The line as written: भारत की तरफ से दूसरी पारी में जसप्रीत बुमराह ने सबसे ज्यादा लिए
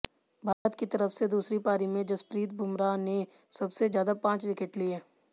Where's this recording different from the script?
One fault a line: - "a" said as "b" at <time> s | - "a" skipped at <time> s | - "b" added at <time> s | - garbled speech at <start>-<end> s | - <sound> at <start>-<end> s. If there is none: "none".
- dropout at 0.5-0.7 s
- "पांच विकेट" added at 4.2 s